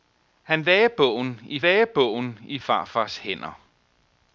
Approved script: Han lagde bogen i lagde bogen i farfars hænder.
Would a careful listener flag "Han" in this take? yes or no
no